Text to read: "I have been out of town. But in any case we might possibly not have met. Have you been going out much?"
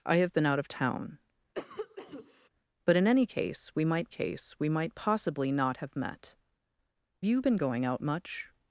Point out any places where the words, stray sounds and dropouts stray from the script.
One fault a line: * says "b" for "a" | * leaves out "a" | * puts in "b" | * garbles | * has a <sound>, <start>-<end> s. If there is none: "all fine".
* has a cough, 1.5-2.5 s
* puts in "case we might"
* leaves out "Have"